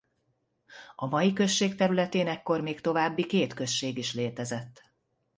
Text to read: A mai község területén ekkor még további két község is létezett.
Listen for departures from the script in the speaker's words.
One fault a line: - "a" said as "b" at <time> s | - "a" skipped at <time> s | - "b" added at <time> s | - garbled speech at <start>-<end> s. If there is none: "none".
none